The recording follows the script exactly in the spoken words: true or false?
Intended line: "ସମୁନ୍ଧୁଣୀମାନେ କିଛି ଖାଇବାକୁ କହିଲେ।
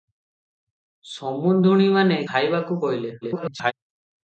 false